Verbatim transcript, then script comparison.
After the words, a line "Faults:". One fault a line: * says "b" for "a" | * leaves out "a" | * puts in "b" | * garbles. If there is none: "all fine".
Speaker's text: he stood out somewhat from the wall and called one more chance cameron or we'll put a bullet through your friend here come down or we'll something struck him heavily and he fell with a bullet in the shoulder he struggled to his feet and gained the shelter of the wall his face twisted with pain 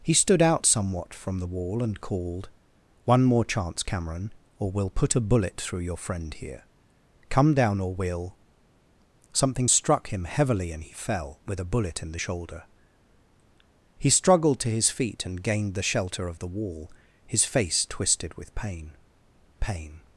he stood out somewhat from the wall and called one more chance cameron or we'll put a bullet through your friend here come down or we'll something struck him heavily and he fell with a bullet in the shoulder he struggled to his feet and gained the shelter of the wall his face twisted with pain pain
Faults:
* puts in "pain"